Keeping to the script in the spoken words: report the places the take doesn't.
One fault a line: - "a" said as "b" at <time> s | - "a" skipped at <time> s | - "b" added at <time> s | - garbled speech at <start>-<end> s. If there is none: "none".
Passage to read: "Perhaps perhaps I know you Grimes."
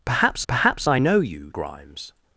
none